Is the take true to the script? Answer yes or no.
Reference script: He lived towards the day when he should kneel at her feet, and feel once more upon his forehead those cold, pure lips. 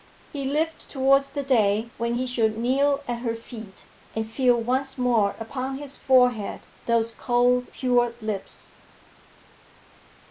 yes